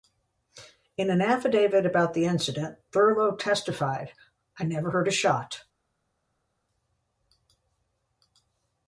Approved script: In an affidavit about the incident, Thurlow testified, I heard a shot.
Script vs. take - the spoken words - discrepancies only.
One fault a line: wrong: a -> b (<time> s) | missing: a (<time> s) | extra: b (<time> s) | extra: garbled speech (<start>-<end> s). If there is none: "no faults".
extra: never (4.6 s)